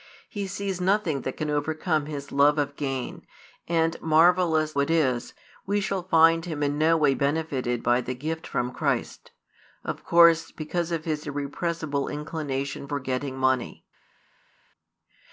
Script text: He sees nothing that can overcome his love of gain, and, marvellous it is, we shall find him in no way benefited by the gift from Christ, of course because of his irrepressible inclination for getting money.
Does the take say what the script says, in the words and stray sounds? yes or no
yes